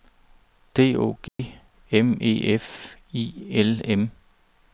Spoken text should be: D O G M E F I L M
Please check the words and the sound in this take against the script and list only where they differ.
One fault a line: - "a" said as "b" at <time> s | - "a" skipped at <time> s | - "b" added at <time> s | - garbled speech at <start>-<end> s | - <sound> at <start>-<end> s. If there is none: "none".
- dropout at 1.3-1.4 s